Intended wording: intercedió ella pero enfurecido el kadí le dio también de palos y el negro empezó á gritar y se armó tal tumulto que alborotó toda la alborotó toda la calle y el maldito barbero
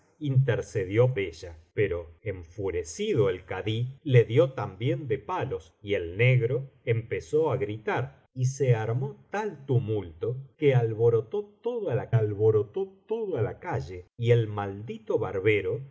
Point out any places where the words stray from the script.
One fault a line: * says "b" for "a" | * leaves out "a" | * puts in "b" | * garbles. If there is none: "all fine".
all fine